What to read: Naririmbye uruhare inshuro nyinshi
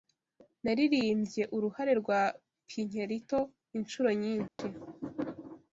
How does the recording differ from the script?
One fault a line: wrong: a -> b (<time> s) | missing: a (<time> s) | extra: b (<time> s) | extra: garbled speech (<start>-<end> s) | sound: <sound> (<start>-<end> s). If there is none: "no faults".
extra: rwa Pinkerito (2.0 s)
sound: dropout (4.5-4.6 s)